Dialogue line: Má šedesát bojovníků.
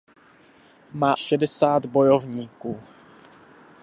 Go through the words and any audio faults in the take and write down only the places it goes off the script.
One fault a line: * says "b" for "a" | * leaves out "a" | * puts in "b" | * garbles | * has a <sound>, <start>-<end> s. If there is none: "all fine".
all fine